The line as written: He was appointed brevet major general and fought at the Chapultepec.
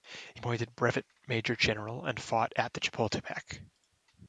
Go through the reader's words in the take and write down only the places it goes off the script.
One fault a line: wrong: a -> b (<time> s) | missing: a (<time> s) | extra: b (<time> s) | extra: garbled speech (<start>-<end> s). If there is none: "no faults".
missing: was (0.4 s)